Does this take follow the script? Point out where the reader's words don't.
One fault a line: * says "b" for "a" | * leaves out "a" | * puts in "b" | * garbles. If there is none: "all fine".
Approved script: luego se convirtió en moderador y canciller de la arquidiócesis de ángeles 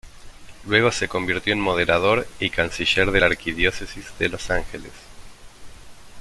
* puts in "los"